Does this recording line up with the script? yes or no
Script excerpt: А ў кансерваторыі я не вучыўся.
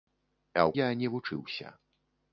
no